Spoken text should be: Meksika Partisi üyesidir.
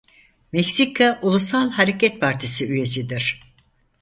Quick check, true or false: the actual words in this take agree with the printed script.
false